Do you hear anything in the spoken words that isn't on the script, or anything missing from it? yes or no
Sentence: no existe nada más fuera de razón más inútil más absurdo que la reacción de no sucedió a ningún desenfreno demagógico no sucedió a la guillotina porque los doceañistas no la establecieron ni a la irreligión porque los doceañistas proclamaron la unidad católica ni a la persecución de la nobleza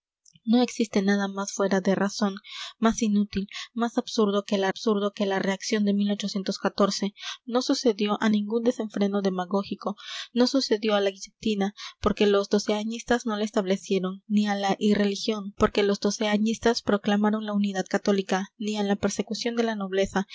yes